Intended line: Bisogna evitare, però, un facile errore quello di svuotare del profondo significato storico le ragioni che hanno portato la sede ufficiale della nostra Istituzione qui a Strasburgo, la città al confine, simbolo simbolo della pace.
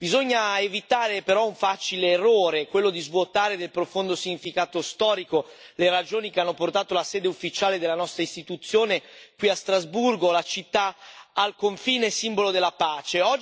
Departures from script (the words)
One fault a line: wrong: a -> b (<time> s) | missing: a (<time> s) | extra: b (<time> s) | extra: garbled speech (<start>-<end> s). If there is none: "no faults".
missing: simbolo (12.5 s)